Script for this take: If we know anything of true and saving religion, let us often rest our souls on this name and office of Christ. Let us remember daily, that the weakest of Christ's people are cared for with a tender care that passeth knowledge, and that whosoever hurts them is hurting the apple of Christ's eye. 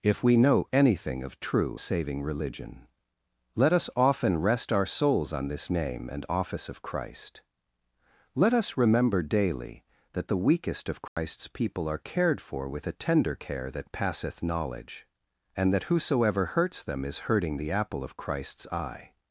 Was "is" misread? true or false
false